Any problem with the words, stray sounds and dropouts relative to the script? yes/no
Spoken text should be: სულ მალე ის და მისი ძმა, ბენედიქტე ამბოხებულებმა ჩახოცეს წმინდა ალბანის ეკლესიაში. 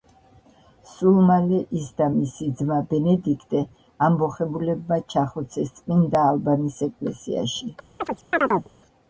yes